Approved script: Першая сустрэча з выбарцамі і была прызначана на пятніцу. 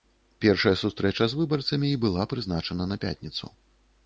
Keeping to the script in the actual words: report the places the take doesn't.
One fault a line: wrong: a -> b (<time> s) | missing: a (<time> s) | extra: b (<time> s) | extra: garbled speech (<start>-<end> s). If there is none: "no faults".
no faults